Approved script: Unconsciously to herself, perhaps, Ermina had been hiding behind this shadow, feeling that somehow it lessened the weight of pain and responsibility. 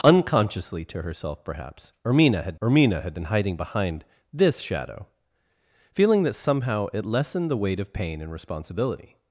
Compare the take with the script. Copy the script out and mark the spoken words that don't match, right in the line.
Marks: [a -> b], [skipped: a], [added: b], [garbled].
Unconsciously to herself, perhaps, Ermina had [added: Ermina had] been hiding behind this shadow, feeling that somehow it lessened the weight of pain and responsibility.